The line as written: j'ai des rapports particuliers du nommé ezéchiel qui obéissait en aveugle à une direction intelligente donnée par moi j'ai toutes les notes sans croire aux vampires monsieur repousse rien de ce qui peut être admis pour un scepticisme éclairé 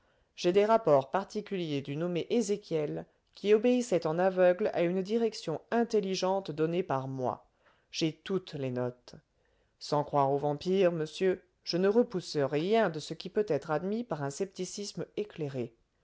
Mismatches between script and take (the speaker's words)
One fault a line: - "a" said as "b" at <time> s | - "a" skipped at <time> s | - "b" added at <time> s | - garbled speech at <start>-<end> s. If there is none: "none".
- "je ne" added at 11.6 s
- "pour" said as "par" at 14.0 s